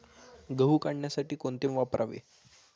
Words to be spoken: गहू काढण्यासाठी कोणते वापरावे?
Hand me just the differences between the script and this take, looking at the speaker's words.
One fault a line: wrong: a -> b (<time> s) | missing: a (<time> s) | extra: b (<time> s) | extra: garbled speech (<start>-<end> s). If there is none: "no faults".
no faults